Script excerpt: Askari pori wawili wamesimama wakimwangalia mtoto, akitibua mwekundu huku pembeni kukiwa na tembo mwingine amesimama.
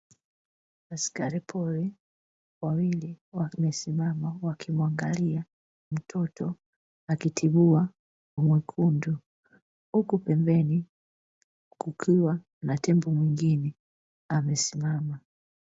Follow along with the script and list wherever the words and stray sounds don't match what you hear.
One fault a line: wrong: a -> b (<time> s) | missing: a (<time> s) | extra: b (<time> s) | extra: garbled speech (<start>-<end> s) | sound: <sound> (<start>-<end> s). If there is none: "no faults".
no faults